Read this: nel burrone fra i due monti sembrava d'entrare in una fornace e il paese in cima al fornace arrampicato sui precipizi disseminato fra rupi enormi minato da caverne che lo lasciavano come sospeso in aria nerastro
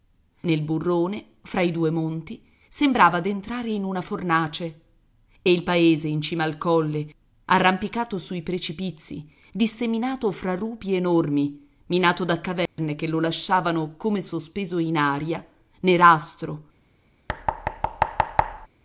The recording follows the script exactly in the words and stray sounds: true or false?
false